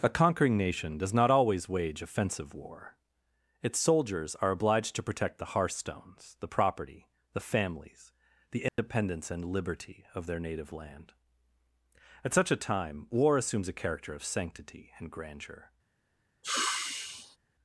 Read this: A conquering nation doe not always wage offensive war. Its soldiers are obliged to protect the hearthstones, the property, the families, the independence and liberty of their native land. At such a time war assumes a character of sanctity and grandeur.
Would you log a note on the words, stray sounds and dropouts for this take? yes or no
yes